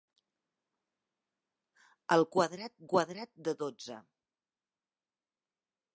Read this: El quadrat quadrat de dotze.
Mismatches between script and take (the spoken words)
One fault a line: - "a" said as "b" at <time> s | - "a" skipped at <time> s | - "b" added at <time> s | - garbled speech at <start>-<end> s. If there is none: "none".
none